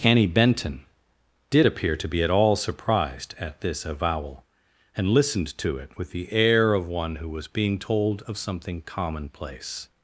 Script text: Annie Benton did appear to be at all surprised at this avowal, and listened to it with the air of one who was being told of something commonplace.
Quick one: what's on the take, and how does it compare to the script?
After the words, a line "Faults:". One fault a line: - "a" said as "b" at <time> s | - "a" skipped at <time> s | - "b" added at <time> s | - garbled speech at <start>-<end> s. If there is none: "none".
Annie Benton did appear to be at all surprised at this avowal, and listened to it with the air of one who was being told of something commonplace.
Faults:
none